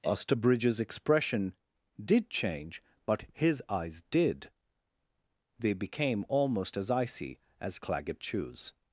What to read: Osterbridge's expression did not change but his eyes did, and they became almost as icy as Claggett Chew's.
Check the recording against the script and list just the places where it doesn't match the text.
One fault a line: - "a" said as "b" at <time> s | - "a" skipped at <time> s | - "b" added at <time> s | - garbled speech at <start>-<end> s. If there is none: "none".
- "not" skipped at 2.3 s
- "and" skipped at 4.5 s